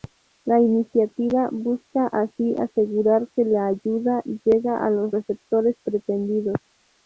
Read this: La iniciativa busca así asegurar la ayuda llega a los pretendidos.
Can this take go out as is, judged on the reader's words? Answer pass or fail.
fail